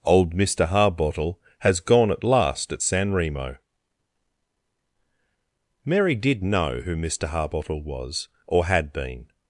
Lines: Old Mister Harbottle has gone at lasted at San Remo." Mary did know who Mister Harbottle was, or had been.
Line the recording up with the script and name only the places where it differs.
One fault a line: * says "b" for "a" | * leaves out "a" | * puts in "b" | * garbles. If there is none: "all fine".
* says "last" for "lasted"